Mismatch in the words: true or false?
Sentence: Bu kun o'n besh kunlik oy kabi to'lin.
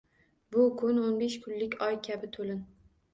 false